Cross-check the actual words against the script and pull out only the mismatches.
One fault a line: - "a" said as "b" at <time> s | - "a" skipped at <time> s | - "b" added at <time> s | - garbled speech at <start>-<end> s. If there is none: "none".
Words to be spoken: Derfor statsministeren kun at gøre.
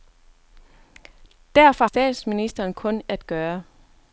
none